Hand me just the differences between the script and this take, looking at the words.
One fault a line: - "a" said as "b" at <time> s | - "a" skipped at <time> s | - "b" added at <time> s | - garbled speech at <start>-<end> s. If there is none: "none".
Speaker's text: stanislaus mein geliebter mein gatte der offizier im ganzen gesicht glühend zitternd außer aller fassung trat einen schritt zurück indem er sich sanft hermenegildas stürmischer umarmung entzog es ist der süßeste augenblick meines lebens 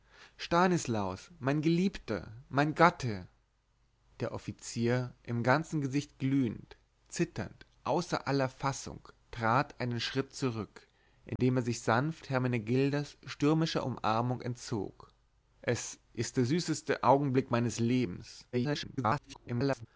- garbled speech at 18.5-19.9 s